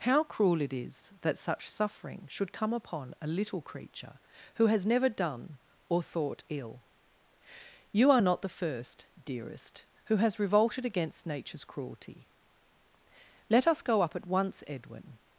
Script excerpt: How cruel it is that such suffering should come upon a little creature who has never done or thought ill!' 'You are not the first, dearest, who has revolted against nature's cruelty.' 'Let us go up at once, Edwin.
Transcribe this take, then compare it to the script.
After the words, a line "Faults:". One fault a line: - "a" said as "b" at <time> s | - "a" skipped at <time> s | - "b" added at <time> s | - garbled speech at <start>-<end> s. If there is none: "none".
How cruel it is that such suffering should come upon a little creature who has never done or thought ill!' 'You are not the first, dearest, who has revolted against nature's cruelty.' 'Let us go up at once, Edwin.
Faults:
none